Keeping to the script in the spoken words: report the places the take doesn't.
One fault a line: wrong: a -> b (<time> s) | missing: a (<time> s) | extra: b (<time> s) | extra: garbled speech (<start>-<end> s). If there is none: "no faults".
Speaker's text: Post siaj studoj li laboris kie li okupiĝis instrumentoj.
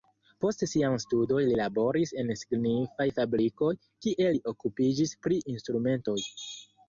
extra: en signifaj fabrikoj (2.2 s)
extra: pri (5.3 s)